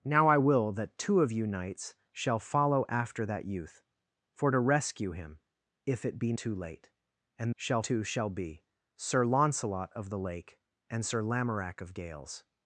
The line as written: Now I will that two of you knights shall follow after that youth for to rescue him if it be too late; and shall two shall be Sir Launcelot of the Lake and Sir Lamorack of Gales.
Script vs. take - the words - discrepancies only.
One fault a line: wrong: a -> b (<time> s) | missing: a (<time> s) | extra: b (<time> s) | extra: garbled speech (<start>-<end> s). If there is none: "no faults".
no faults